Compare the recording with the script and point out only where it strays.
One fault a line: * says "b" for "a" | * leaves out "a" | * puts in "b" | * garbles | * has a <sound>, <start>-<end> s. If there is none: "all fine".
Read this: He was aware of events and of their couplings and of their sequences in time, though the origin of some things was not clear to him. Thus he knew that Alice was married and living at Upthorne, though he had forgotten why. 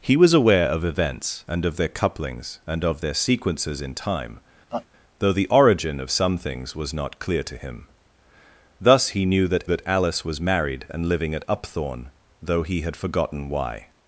* has a laugh, 4.7-4.9 s
* puts in "that"